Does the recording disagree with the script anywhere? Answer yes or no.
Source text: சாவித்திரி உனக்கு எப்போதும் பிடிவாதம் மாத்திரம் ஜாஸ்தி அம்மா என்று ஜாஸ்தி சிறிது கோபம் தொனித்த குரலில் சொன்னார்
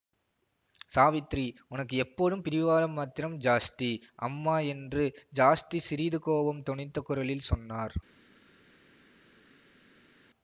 no